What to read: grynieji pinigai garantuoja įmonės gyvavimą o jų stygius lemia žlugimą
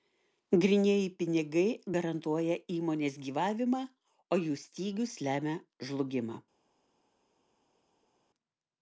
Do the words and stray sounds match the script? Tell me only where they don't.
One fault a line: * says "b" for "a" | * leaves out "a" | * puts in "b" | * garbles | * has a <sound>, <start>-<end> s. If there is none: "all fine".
all fine